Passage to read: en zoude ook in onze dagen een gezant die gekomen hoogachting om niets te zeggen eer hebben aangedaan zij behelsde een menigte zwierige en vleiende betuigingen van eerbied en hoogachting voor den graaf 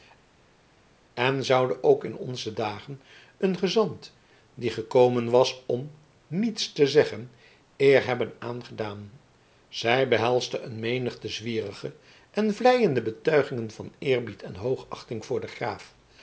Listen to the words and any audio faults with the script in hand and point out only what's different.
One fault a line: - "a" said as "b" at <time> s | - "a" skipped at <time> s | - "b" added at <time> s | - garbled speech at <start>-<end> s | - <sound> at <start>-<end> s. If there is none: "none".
- "hoogachting" said as "was" at 5.3 s